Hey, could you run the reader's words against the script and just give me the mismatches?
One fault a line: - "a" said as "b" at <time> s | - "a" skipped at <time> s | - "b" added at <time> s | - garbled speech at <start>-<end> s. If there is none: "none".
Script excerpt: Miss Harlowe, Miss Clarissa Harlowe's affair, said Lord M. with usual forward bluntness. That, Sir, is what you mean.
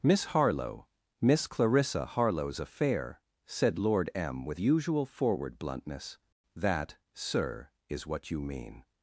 none